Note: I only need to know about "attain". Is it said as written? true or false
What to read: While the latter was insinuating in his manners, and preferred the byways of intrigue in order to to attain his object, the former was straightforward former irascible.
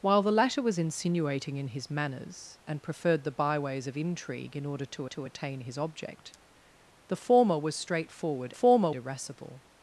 true